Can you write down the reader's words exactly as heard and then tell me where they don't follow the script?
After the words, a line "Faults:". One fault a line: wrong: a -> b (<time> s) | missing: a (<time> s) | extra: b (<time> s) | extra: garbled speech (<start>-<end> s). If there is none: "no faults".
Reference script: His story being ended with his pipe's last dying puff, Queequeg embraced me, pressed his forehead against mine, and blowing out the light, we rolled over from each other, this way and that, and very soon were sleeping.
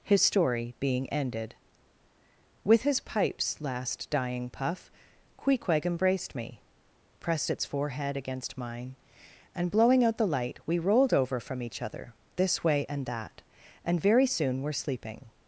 His story being ended with his pipe's last dying puff, Queequeg embraced me, pressed its forehead against mine, and blowing out the light, we rolled over from each other, this way and that, and very soon were sleeping.
Faults:
wrong: his -> its (7.5 s)